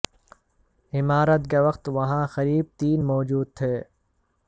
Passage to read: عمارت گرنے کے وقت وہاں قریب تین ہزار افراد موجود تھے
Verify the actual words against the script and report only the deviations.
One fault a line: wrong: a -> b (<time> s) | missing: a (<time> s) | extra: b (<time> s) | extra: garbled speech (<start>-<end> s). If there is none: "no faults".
missing: گرنے (1.4 s)
missing: ہزار افراد (3.0 s)